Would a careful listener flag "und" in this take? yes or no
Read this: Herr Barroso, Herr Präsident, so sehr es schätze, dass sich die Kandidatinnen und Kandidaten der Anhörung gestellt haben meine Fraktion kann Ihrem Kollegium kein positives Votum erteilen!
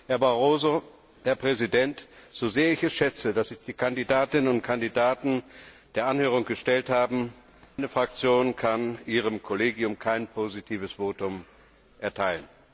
no